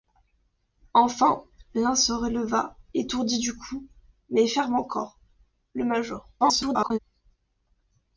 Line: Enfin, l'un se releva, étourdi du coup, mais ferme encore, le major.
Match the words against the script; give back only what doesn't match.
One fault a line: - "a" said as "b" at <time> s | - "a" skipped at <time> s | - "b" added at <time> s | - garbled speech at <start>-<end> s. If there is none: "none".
- garbled speech at 6.4-7.0 s